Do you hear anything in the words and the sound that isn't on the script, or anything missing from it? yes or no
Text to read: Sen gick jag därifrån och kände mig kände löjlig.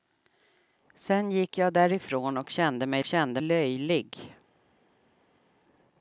no